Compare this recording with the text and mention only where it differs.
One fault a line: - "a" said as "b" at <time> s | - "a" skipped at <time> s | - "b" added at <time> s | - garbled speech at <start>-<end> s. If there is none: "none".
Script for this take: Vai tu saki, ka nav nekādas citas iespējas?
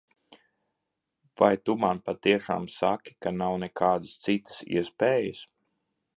- "man patiešām" added at 1.8 s